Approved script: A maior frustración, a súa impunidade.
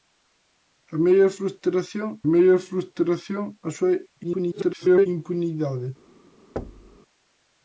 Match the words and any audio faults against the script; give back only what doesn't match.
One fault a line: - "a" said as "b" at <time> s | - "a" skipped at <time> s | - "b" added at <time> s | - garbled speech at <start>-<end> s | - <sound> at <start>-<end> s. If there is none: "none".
- "maior frustración" added at 2.3 s
- garbled speech at 4.2-5.1 s
- thud at 6.6-7.0 s